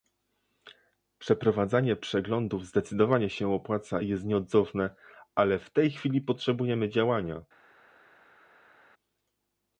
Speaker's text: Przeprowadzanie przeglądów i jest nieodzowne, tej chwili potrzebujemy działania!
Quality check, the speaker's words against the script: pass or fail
fail